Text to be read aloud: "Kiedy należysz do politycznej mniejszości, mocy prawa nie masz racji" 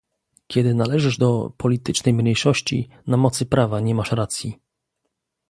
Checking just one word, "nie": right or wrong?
right